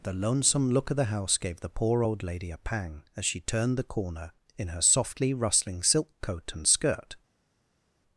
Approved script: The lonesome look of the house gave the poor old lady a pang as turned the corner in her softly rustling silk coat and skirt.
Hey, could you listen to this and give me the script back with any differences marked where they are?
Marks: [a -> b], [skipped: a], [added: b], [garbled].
The lonesome look of the house gave the poor old lady a pang as [added: she] turned the corner in her softly rustling silk coat and skirt.